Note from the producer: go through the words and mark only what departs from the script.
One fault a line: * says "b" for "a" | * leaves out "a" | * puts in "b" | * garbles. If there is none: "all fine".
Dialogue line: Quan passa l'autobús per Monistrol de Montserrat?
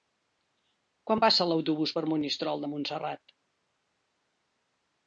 all fine